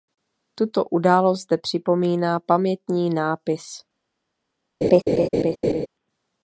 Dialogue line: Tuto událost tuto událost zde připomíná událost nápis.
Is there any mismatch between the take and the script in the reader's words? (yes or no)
yes